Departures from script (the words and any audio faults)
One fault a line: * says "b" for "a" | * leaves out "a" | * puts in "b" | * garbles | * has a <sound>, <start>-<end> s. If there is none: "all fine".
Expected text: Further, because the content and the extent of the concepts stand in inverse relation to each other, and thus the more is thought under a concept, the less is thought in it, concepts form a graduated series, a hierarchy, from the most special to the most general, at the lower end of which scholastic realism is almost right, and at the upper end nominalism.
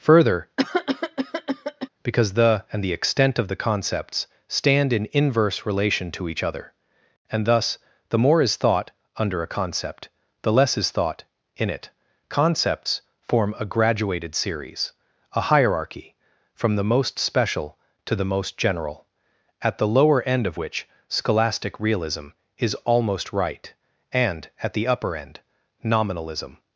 * has a cough, 0.6-1.9 s
* leaves out "content"